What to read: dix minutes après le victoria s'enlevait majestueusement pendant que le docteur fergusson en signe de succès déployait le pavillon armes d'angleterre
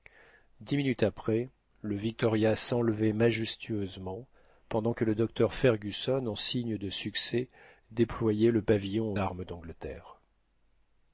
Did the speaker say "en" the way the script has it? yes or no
yes